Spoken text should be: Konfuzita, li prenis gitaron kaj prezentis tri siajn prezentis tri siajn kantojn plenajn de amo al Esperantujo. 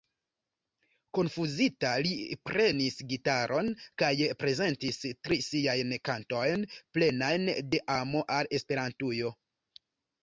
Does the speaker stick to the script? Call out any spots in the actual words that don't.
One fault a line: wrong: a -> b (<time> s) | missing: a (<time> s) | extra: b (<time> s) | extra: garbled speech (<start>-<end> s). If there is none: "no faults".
missing: prezentis tri siajn (5.9 s)